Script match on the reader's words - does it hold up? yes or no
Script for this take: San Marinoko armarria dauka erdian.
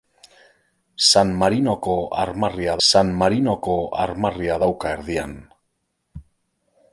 no